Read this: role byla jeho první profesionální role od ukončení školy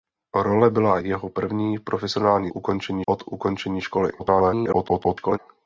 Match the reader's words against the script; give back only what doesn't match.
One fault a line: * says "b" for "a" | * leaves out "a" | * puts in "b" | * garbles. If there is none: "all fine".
* says "ukončení" for "role"
* garbles